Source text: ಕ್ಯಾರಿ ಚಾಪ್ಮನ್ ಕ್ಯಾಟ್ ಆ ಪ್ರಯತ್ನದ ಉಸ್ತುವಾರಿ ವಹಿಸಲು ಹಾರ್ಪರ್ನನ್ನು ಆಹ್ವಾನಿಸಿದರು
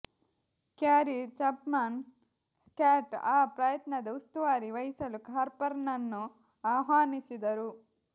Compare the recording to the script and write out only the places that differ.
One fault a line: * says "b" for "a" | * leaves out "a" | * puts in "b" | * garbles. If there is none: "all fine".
all fine